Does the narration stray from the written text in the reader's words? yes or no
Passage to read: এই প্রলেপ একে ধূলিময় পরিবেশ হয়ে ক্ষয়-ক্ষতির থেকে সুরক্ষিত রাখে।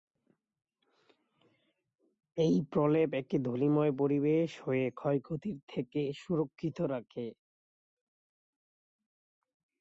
no